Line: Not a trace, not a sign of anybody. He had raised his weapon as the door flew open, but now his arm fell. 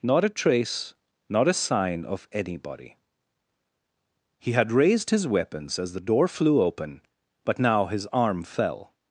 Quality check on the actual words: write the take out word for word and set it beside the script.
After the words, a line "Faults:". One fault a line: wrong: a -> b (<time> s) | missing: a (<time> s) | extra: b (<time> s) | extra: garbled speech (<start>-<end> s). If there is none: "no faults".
Not a trace, not a sign of anybody. He had raised his weapons as the door flew open, but now his arm fell.
Faults:
wrong: weapon -> weapons (5.3 s)